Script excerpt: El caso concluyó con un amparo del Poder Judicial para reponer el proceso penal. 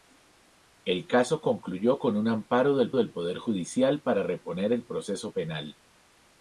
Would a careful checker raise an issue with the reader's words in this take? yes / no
yes